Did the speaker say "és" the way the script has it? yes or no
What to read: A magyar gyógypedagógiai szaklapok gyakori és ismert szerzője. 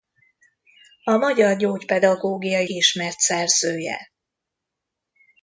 no